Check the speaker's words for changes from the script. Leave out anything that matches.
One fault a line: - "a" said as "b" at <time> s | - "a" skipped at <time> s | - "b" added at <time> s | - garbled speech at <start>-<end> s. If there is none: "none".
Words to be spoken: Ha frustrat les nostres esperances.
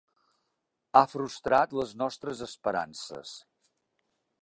none